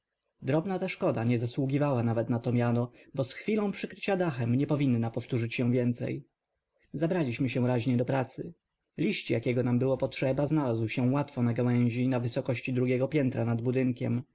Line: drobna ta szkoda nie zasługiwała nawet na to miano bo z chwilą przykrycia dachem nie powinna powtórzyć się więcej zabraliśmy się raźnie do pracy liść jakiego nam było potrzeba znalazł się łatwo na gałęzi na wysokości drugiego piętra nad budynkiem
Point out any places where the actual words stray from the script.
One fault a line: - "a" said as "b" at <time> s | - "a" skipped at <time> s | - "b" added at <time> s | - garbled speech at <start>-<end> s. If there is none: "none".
none